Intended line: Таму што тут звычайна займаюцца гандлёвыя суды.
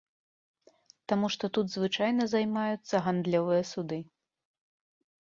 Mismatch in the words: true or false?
false